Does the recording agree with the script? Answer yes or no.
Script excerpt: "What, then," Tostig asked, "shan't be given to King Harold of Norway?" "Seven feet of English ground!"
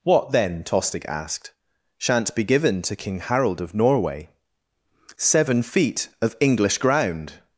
yes